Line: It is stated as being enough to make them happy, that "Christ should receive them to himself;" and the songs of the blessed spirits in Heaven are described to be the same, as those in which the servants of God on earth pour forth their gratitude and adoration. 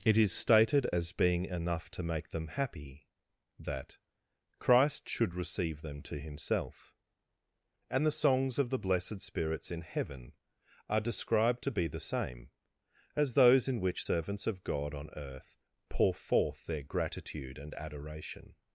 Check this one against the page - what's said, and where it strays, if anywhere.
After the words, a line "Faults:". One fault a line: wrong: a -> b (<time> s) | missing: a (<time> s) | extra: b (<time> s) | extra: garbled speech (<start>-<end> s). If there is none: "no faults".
It is stated as being enough to make them happy, that "Christ should receive them to himself;" and the songs of the blessed spirits in Heaven are described to be the same, as those in which servants of God on earth pour forth their gratitude and adoration.
Faults:
missing: the (14.1 s)